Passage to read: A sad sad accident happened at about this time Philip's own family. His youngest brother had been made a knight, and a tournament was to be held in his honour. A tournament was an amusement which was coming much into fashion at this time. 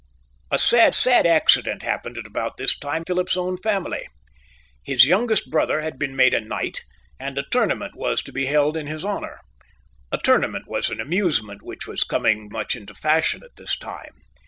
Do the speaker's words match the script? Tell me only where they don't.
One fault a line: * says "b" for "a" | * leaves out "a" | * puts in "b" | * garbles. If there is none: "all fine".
all fine